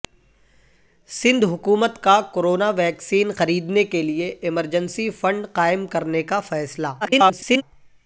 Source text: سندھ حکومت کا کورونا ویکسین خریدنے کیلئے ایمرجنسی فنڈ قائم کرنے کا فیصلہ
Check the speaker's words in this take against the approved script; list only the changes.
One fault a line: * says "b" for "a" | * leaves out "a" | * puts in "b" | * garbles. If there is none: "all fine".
* garbles